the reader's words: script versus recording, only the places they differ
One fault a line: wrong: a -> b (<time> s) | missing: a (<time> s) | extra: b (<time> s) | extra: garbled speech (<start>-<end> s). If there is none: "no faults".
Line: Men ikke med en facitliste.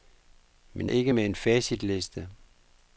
no faults